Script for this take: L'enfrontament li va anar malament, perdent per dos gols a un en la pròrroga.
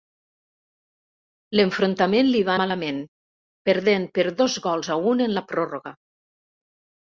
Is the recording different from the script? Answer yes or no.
yes